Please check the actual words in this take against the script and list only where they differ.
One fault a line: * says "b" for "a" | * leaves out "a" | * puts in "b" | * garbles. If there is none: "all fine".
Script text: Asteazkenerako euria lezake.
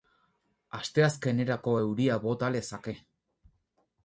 * puts in "bota"